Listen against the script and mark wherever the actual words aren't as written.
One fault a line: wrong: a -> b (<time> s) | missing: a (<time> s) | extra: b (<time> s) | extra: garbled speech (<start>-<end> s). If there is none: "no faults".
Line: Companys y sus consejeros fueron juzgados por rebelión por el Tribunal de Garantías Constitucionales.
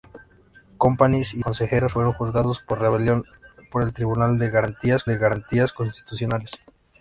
missing: sus (1.4 s)
extra: de Garantías (5.1 s)